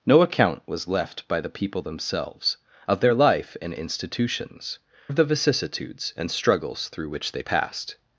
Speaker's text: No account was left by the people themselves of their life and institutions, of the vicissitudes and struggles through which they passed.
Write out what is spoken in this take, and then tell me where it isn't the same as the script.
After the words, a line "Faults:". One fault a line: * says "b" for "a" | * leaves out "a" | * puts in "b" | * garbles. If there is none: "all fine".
No account was left by the people themselves of their life and institutions, of the vicissitudes and struggles through which they passed.
Faults:
all fine